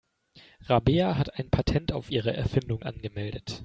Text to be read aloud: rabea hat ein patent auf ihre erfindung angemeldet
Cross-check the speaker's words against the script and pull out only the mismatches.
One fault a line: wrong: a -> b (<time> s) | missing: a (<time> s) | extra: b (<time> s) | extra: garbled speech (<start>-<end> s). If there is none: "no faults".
no faults